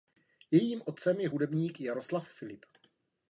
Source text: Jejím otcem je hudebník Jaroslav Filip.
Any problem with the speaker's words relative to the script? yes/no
no